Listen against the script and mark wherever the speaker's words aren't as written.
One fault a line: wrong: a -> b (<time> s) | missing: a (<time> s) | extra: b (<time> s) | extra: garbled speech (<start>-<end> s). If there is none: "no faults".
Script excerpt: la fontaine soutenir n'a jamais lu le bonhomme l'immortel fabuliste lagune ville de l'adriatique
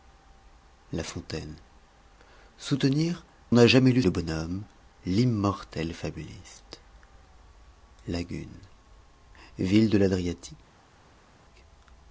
no faults